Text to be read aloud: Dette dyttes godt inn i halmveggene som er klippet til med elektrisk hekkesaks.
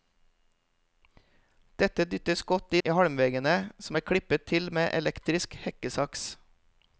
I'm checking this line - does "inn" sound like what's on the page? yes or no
no